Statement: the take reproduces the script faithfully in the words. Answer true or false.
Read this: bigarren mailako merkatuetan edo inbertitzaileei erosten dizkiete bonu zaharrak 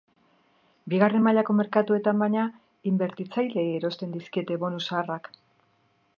false